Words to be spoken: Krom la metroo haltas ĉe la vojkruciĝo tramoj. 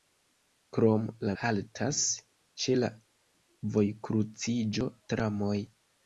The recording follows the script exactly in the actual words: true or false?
false